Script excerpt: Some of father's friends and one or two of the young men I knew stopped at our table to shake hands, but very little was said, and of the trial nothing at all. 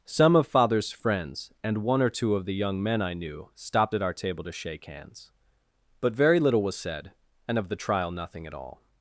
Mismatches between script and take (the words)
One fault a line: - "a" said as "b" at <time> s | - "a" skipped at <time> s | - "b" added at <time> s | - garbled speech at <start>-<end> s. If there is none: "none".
none